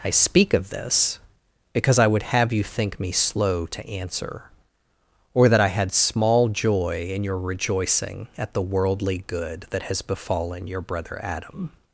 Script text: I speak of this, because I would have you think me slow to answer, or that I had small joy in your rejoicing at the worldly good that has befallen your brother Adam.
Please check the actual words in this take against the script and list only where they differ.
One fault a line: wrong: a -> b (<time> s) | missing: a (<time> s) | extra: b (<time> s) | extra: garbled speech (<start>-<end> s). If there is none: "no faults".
no faults